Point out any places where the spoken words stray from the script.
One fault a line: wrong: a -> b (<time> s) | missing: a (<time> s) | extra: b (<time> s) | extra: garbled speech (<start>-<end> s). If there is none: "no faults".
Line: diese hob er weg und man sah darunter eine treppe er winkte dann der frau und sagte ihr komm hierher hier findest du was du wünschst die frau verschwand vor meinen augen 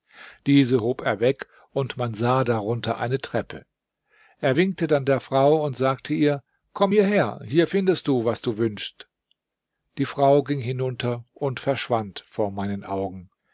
extra: ging hinunter und (10.4 s)